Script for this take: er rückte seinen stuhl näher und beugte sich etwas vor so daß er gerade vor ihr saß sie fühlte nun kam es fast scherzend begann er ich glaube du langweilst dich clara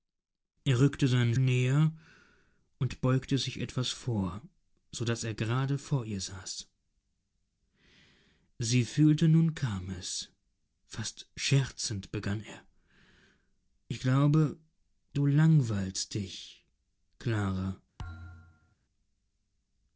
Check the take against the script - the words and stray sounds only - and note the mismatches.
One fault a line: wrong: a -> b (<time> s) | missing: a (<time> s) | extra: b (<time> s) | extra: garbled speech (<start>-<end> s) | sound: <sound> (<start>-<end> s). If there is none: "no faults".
missing: stuhl (1.4 s)
sound: thud (18.0-18.8 s)